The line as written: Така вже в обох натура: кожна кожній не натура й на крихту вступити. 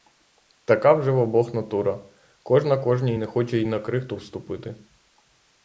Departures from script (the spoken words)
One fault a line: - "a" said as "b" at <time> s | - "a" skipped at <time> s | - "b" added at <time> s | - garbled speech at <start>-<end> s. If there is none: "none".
- "натура" said as "хоче" at 3.2 s